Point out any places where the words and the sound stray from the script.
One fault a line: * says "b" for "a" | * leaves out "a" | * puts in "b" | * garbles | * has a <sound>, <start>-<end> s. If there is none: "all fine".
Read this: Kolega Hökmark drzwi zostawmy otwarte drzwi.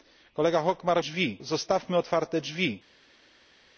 all fine